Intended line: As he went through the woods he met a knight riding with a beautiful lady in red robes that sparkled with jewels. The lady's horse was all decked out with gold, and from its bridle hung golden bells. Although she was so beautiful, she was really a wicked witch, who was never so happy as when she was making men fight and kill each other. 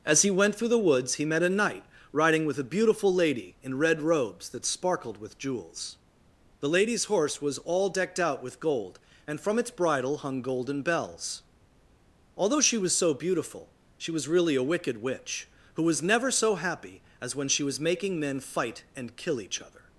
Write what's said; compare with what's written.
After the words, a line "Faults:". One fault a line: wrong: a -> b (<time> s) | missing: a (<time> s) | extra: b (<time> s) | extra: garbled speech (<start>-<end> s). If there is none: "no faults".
As he went through the woods he met a knight riding with a beautiful lady in red robes that sparkled with jewels. The lady's horse was all decked out with gold, and from its bridle hung golden bells. Although she was so beautiful, she was really a wicked witch, who was never so happy as when she was making men fight and kill each other.
Faults:
no faults